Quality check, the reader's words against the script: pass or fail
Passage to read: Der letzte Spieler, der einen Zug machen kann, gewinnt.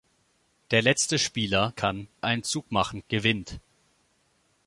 fail